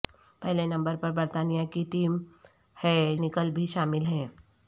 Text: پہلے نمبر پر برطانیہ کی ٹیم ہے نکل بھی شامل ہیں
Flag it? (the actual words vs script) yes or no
no